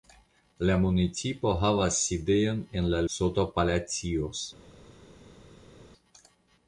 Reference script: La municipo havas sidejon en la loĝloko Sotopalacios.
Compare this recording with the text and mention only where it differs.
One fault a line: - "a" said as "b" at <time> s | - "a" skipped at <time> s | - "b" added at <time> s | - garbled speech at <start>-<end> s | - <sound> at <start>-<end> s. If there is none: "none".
- "loĝloko" skipped at 3.0 s